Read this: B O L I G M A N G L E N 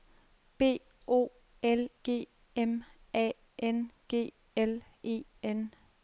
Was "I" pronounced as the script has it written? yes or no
no